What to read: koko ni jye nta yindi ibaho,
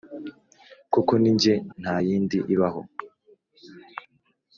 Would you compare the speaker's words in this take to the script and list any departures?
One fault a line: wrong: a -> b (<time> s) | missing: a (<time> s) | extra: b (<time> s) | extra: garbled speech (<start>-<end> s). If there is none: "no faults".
no faults